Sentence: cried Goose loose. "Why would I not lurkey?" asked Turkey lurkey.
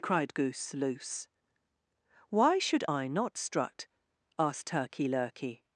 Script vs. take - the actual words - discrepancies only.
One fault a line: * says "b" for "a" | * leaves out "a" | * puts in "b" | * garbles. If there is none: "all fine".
* says "should" for "would"
* says "strut" for "lurkey"